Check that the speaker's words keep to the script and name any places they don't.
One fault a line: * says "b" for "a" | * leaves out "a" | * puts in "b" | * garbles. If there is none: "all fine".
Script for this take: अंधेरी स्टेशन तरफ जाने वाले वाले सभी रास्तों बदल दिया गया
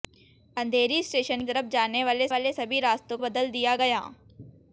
all fine